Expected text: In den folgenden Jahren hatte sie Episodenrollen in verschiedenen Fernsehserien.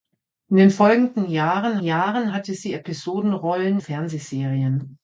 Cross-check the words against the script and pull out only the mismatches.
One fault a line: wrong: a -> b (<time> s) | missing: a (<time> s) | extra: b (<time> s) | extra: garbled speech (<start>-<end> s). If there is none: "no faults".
extra: Jahren (1.8 s)
missing: in verschiedenen (3.8 s)